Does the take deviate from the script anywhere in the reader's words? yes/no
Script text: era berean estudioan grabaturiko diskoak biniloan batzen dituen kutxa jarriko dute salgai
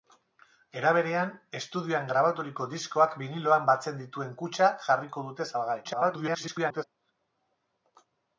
yes